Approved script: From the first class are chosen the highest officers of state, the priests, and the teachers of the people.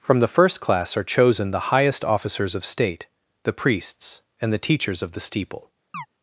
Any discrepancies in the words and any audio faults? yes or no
yes